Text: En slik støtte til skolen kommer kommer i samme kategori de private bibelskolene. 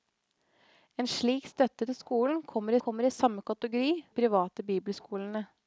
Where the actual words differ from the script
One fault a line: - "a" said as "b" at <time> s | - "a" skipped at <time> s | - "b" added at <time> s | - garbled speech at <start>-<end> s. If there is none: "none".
none